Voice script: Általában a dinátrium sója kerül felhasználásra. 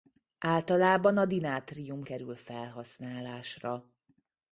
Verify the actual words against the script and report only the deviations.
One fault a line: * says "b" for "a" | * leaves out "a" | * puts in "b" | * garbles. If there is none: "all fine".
* leaves out "sója"